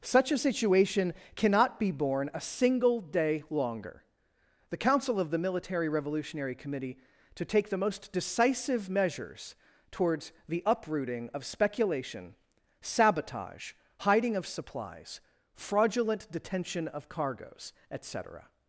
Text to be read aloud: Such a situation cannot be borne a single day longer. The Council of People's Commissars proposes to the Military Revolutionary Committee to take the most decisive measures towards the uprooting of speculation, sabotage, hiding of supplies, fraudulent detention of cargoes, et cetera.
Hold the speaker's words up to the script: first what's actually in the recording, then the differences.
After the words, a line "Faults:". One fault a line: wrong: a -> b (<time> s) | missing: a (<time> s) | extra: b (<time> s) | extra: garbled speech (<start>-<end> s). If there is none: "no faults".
Such a situation cannot be borne a single day longer. The Council of the Military Revolutionary Committee to take the most decisive measures towards the uprooting of speculation, sabotage, hiding of supplies, fraudulent detention of cargoes, et cetera.
Faults:
missing: People's Commissars proposes to (5.3 s)